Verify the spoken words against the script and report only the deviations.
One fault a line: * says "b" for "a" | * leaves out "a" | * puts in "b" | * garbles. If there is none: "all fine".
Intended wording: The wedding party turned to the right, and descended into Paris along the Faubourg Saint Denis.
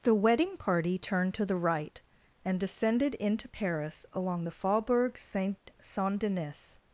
* puts in "Saint"